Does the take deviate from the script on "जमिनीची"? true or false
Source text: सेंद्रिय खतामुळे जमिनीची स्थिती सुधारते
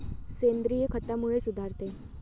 true